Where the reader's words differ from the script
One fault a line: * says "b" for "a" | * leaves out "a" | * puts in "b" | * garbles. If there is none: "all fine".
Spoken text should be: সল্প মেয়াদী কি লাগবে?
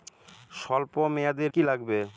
all fine